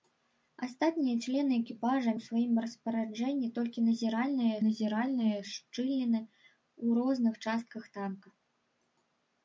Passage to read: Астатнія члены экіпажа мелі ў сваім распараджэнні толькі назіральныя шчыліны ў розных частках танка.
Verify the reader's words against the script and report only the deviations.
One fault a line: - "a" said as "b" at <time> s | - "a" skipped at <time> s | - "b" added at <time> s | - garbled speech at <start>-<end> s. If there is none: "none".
- "мелі" skipped at 2.1 s
- "назіральныя" added at 4.6 s